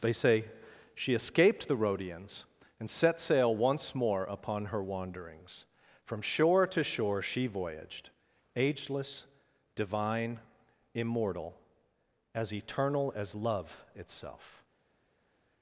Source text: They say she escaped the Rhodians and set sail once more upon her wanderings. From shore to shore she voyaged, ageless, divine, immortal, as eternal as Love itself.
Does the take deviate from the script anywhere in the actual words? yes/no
no